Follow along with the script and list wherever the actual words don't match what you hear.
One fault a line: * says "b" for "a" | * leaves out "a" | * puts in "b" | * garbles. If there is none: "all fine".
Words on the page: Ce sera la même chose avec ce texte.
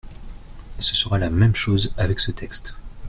all fine